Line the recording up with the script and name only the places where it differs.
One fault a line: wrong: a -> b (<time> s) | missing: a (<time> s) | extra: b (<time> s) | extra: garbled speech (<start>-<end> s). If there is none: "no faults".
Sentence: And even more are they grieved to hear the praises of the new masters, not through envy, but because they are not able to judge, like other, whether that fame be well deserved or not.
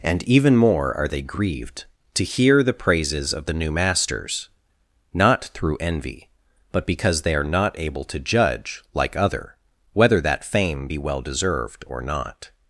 no faults